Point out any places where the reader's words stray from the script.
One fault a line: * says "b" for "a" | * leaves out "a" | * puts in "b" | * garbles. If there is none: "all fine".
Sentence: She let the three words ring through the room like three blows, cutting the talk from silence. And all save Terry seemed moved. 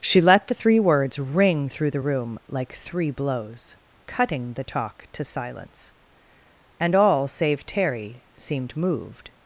* says "to" for "from"